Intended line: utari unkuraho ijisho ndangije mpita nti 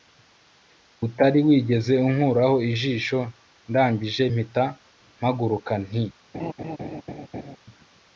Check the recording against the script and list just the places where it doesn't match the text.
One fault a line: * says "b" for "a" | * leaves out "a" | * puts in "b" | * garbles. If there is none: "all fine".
* puts in "wigeze"
* puts in "mpaguruka"